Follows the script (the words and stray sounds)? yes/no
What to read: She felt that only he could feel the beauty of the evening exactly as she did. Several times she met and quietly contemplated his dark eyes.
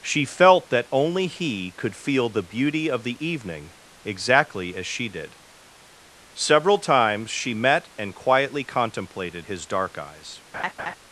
no